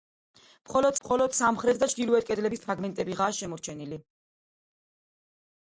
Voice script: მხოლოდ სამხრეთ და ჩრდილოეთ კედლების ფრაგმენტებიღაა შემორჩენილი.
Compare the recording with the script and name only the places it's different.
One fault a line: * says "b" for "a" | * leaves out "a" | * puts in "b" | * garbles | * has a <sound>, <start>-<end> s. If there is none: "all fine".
* puts in "მხოლოდ"